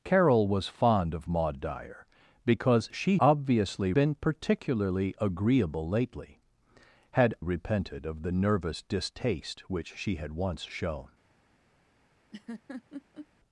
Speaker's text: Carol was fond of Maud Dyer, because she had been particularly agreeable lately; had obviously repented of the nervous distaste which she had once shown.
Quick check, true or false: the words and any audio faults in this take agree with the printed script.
false